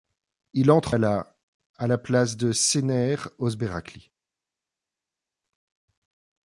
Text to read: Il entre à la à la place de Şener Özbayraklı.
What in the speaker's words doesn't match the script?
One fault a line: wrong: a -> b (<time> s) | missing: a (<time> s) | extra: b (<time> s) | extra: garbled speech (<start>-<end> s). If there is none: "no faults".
no faults